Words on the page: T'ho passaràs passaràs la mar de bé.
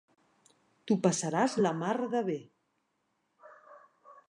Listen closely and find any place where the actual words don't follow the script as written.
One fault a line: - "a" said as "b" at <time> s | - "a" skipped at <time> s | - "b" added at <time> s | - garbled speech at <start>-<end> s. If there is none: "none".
- "passaràs" skipped at 1.6 s